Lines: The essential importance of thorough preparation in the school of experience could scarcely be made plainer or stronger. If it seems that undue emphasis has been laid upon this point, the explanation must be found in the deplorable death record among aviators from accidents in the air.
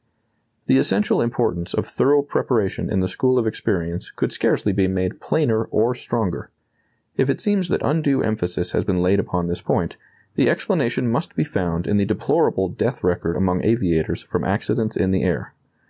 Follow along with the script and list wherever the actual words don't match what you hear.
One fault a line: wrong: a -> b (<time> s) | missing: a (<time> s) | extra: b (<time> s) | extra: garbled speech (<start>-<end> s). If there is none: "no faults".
no faults